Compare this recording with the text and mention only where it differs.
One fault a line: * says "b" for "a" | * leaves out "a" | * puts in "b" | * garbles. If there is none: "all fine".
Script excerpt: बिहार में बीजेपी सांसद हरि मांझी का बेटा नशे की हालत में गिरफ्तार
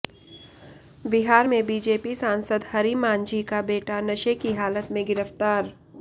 all fine